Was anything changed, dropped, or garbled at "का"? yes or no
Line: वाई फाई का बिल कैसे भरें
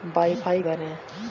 yes